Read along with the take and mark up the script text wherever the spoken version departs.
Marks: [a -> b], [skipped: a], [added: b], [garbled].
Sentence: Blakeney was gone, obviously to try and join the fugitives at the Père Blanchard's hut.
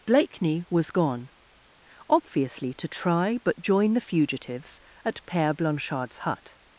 Blakeney was gone, obviously to try [and -> but] join the fugitives at [skipped: the] Père Blanchard's hut.